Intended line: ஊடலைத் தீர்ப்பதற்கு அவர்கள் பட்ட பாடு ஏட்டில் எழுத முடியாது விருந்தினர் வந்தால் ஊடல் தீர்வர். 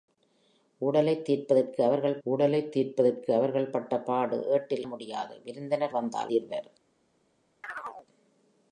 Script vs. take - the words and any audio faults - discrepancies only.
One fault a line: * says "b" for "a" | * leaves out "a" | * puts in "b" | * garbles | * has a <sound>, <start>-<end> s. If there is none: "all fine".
* puts in "ஊடலைத் தீர்ப்பதற்கு அவர்கள்"
* leaves out "எழுத"
* leaves out "ஊடல்"
* has a chirp, 7.6-8.1 s